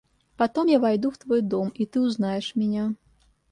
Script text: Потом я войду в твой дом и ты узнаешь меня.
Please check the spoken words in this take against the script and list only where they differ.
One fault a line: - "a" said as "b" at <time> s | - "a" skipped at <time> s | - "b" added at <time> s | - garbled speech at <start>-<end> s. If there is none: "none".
none